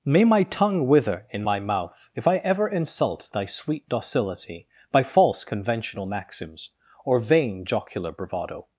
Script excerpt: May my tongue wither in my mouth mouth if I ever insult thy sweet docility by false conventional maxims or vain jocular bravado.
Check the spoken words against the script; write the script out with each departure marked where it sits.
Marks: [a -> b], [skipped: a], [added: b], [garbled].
May my tongue wither in my mouth [skipped: mouth] if I ever insult thy sweet docility by false conventional maxims or vain jocular bravado.